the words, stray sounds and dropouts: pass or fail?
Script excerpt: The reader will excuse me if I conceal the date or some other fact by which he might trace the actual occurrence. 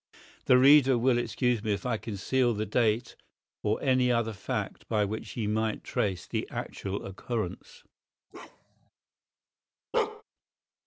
fail